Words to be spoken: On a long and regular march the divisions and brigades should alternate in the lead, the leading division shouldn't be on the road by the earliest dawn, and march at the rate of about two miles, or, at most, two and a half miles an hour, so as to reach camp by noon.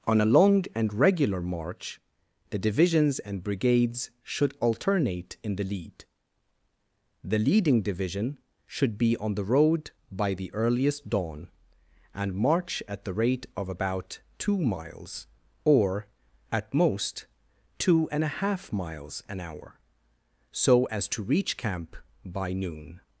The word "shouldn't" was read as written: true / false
false